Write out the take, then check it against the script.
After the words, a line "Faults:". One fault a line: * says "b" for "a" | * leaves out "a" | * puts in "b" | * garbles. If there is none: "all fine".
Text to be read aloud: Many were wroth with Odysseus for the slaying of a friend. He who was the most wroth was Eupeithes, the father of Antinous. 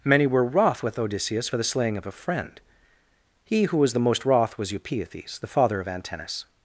Many were wroth with Odysseus for the slaying of a friend. He who was the most wroth was Eupeithes, the father of Antinous.
Faults:
all fine